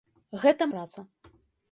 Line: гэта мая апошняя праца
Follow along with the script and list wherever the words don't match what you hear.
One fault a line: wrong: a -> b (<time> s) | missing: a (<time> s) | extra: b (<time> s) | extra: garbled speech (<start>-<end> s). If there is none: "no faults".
missing: мая апошняя (0.7 s)